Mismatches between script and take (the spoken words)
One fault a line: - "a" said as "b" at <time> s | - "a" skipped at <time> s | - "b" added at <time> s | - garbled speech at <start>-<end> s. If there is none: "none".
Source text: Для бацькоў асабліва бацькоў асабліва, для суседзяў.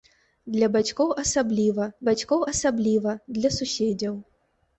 none